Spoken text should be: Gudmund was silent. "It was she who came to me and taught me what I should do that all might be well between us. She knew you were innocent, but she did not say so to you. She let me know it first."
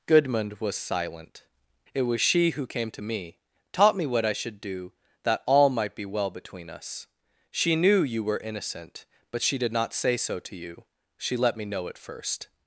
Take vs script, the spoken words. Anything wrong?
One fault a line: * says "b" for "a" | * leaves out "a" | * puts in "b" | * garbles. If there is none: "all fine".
* leaves out "and"